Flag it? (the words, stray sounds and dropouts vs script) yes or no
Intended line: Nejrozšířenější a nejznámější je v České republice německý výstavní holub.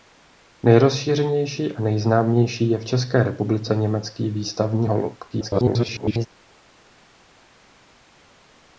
yes